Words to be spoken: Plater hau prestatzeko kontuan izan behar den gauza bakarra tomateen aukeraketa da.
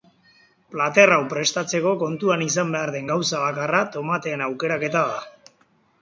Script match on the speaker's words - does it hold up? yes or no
yes